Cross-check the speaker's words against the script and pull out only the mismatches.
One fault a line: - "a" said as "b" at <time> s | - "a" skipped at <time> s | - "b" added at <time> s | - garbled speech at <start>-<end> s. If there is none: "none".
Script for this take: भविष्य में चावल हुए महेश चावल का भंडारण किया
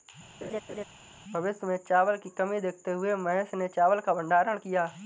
- "की कमी देखते" added at 2.2 s
- "ने" added at 3.5 s